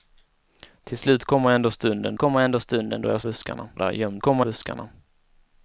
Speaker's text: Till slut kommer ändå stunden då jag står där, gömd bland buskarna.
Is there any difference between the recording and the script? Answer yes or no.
yes